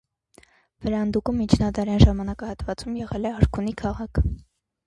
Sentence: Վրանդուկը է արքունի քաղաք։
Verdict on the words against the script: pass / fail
fail